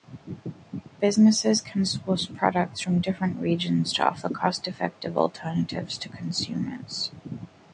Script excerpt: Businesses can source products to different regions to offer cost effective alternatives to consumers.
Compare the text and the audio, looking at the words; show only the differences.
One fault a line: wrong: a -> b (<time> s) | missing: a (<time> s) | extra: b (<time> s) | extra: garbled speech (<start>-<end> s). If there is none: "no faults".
wrong: to -> from (2.8 s)